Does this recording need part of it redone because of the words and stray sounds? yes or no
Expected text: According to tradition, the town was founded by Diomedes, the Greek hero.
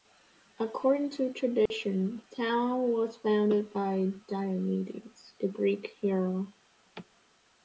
yes